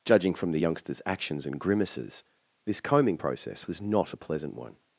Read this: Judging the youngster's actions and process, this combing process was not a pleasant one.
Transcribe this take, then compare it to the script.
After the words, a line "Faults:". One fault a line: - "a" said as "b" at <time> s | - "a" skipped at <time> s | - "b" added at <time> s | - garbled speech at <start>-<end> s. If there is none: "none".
Judging from the youngster's actions and grimaces, this combing process was not a pleasant one.
Faults:
- "from" added at 0.3 s
- "process" said as "grimaces" at 1.6 s